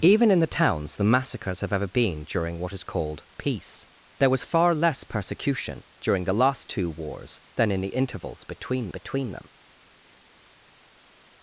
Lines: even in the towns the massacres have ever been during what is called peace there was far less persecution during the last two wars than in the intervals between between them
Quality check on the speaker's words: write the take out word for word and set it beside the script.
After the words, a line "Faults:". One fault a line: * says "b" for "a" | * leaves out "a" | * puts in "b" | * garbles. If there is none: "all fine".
even in the towns the massacres have ever been during what is called peace there was far less persecution during the last two wars than in the intervals between between them
Faults:
all fine